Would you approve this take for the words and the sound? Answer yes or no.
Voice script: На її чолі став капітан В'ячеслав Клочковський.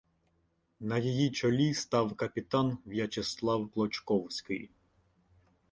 yes